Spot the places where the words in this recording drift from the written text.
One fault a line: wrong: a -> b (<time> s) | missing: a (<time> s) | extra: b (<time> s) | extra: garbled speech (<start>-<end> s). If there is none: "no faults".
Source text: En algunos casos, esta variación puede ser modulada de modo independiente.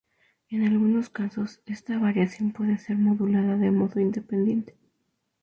no faults